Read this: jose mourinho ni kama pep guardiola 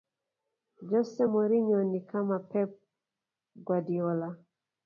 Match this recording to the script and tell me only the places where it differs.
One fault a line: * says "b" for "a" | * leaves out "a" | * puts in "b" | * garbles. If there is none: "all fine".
all fine